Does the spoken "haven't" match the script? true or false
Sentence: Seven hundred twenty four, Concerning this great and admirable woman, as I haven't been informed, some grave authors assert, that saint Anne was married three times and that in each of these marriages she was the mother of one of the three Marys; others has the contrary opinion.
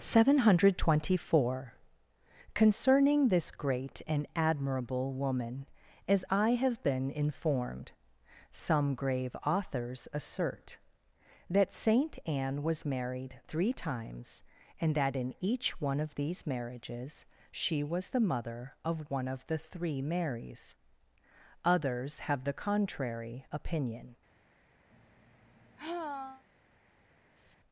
false